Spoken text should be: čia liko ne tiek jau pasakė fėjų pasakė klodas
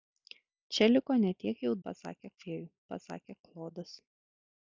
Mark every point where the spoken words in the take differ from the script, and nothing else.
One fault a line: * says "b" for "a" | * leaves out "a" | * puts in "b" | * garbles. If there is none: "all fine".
all fine